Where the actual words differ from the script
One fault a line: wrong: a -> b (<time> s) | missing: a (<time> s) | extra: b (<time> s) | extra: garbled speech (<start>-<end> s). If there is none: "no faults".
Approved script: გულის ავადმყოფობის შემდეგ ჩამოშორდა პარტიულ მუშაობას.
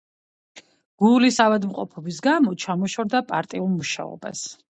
wrong: შემდეგ -> გამო (2.3 s)